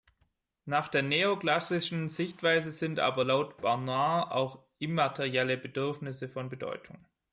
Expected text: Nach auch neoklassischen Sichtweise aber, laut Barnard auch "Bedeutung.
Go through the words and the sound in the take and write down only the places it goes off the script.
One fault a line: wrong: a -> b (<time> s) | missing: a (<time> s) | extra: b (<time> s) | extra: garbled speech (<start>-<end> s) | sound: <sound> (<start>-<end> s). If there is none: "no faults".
wrong: auch -> der (0.9 s)
extra: sind (2.7 s)
extra: immaterielle Bedürfnisse von (4.8 s)